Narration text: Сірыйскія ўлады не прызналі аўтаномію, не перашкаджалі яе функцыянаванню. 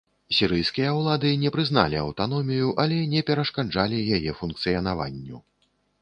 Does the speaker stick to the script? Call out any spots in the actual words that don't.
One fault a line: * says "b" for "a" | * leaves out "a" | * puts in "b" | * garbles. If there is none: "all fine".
* puts in "але"